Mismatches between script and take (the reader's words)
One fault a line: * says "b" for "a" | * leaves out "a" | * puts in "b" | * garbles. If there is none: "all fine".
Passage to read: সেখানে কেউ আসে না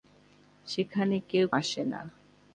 all fine